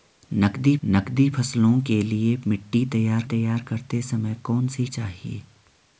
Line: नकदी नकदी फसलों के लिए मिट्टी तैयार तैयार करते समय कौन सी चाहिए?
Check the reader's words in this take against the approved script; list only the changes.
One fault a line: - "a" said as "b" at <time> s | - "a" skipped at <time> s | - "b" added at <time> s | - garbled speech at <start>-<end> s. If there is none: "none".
none